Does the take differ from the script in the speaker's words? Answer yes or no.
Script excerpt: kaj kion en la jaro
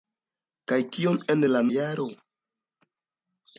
no